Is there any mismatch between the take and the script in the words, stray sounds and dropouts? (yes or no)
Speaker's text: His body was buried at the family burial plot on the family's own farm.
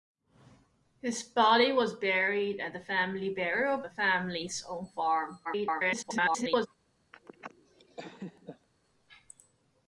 yes